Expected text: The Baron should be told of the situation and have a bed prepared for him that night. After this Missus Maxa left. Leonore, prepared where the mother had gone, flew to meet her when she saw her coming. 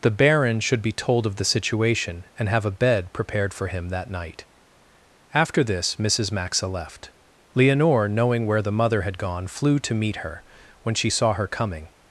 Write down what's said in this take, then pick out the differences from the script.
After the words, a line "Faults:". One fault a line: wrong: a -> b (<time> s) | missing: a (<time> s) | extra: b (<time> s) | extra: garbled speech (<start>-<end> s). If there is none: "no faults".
The Baron should be told of the situation and have a bed prepared for him that night. After this Missus Maxa left. Leonore, knowing where the mother had gone, flew to meet her when she saw her coming.
Faults:
wrong: prepared -> knowing (8.1 s)